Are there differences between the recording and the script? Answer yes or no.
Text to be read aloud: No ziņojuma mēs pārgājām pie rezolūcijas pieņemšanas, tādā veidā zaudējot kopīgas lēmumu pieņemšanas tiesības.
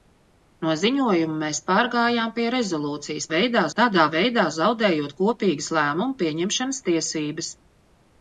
yes